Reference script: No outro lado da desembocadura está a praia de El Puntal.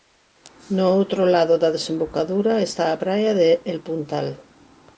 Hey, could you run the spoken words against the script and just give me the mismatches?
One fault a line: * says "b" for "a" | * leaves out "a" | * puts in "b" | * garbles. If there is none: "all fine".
all fine